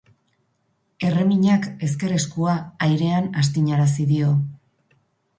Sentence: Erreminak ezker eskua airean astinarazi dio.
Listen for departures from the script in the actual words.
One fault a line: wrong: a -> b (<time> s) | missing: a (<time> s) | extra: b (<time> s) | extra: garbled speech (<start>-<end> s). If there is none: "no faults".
no faults